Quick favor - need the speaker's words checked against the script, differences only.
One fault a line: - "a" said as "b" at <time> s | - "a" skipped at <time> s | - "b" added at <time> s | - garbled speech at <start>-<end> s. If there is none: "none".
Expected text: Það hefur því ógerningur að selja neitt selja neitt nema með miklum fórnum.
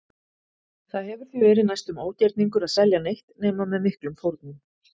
- "verið næstum" added at 1.4 s
- "selja neitt" skipped at 3.3 s